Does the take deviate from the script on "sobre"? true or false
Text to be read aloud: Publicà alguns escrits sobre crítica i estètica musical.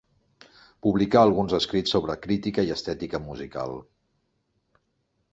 false